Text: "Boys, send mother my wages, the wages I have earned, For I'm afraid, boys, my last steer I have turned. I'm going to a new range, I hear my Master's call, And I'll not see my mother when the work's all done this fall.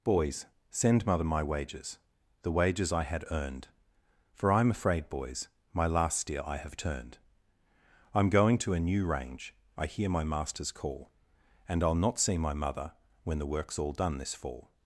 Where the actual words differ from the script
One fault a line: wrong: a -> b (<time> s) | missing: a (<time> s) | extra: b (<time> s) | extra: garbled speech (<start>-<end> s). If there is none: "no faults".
wrong: have -> had (3.0 s)